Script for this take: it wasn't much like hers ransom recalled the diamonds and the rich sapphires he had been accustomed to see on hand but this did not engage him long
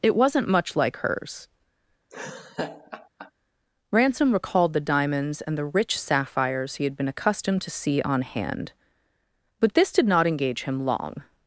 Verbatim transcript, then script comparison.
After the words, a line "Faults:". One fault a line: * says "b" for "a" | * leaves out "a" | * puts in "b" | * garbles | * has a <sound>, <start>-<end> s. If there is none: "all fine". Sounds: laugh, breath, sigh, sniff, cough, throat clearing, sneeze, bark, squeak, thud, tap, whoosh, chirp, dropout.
it wasn't much like hers ransom recalled the diamonds and the rich sapphires he had been accustomed to see on hand but this did not engage him long
Faults:
* has a laugh, 2.1-3.3 s